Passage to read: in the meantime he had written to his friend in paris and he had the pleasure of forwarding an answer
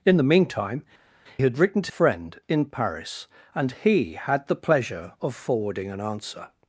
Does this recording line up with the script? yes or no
no